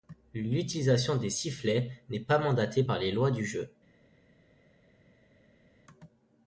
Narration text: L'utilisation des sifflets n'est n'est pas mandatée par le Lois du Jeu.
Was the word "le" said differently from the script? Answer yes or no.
yes